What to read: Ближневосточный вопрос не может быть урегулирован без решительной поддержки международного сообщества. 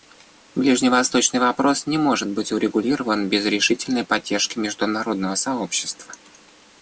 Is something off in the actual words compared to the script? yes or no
no